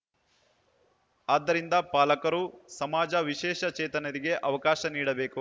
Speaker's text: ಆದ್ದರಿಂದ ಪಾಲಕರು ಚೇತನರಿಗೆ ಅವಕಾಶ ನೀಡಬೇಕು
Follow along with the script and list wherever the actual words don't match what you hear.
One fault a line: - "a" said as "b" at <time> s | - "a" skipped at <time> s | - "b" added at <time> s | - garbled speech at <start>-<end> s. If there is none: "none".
- "ಸಮಾಜ ವಿಶೇಷ" added at 2.8 s